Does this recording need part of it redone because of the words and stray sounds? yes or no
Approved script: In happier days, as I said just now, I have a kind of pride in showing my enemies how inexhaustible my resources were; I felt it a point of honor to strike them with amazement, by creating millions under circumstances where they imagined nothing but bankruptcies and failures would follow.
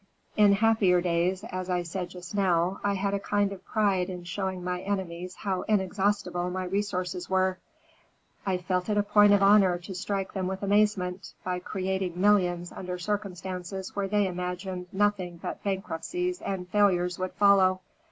yes